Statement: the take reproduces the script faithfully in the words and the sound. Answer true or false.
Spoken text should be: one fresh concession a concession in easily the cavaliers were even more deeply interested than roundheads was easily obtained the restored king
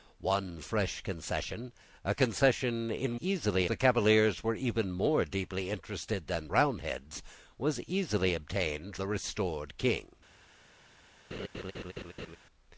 false